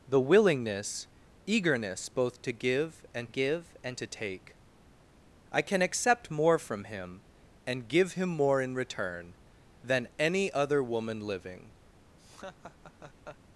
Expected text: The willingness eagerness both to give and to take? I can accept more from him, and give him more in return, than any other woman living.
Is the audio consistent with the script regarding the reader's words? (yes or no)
no